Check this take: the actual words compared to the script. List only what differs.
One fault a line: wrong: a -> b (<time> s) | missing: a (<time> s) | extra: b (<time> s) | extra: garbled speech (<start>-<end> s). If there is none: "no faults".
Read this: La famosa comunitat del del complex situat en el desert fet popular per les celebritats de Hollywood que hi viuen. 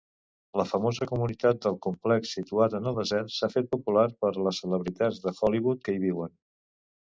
missing: del (1.8 s)
extra: s'ha (3.4 s)